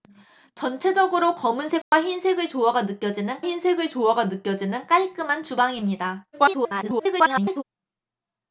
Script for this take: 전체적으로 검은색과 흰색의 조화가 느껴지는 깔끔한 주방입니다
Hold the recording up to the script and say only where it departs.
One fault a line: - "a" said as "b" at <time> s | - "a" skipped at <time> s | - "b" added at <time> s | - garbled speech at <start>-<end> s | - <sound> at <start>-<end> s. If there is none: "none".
- dropout at 1.8-1.9 s
- "흰색의 조화가 느껴지는" added at 3.4 s
- garbled speech at 6.3-7.6 s